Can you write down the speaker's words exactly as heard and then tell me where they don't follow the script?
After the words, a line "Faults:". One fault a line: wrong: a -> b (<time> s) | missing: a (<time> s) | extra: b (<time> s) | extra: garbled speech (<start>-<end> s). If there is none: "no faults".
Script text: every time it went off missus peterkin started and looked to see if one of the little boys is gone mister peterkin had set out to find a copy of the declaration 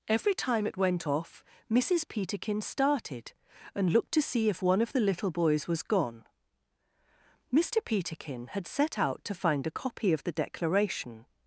every time it went off missus peterkin started and looked to see if one of the little boys was gone mister peterkin had set out to find a copy of the declaration
Faults:
wrong: is -> was (5.7 s)